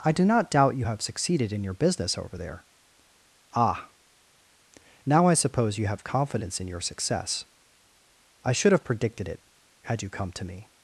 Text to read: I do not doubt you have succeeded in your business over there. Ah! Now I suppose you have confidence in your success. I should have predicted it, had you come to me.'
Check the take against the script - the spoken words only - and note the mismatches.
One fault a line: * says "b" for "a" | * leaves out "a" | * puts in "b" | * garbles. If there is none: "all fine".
all fine